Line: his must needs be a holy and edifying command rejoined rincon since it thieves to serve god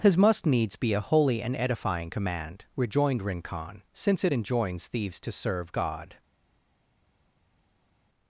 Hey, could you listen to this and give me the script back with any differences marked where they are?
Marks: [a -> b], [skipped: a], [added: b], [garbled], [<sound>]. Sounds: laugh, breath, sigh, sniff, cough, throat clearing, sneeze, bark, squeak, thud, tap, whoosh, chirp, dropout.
his must needs be a holy and edifying command rejoined rincon since it [added: enjoins] thieves to serve god